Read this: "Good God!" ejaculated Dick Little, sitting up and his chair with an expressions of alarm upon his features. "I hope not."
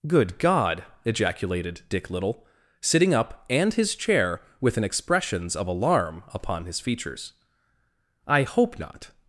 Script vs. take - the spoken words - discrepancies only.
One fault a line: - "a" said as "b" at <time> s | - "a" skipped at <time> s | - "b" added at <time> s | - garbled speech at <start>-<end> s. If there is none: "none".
none